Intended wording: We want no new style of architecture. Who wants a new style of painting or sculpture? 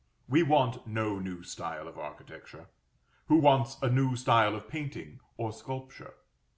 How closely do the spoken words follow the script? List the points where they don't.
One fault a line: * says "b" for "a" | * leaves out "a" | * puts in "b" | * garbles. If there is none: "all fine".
all fine